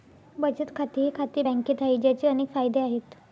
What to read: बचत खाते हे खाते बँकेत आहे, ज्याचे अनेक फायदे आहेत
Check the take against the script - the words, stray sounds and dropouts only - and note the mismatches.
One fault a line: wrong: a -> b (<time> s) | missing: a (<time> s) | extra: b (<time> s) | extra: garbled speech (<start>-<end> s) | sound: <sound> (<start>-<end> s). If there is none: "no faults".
no faults